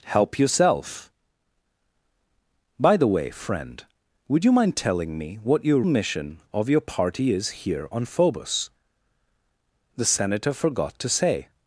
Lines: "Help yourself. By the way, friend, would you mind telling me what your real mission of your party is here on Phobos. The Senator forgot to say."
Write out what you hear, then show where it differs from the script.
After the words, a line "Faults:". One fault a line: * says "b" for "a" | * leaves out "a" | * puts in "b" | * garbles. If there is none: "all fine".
"Help yourself. By the way, friend, would you mind telling me what your mission of your party is here on Phobos. The Senator forgot to say."
Faults:
* leaves out "real"